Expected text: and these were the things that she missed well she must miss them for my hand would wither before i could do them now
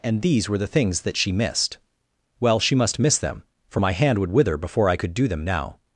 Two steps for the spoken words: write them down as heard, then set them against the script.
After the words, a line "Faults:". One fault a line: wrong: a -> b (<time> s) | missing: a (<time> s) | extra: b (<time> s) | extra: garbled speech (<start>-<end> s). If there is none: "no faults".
and these were the things that she missed well she must miss them for my hand would wither before i could do them now
Faults:
no faults